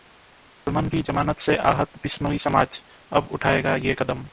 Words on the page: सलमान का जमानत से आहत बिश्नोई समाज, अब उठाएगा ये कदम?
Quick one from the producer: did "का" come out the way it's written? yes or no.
no